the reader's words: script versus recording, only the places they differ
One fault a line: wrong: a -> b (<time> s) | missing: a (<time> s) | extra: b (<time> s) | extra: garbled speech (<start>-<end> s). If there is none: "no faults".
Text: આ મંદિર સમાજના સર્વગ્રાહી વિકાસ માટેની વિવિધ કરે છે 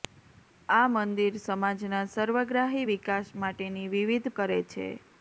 no faults